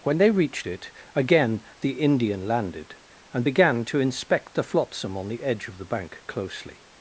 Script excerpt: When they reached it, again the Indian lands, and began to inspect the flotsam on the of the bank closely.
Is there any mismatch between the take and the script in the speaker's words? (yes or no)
yes